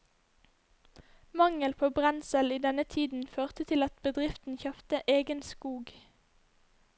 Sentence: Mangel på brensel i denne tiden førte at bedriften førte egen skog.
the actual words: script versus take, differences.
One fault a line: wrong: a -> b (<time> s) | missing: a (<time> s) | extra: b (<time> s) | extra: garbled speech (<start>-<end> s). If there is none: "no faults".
extra: til (3.7 s)
wrong: førte -> kjøpte (4.6 s)